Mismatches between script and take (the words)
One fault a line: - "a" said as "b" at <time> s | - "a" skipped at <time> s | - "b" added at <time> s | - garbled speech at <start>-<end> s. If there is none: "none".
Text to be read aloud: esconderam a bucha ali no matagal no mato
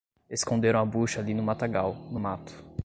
none